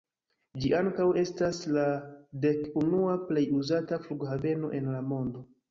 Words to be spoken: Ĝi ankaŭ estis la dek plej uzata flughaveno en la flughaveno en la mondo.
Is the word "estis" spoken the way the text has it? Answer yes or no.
no